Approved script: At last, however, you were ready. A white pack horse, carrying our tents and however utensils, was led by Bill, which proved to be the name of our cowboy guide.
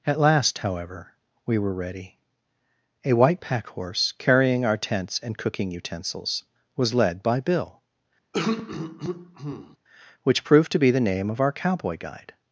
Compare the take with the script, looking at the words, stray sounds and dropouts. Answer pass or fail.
fail